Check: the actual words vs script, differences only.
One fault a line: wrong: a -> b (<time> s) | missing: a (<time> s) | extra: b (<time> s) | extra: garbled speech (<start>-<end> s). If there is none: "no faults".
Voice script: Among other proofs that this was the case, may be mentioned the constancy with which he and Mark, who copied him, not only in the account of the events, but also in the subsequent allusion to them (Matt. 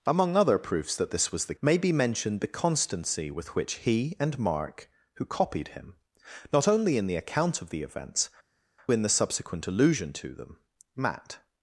missing: case (1.6 s)
missing: but also (8.3 s)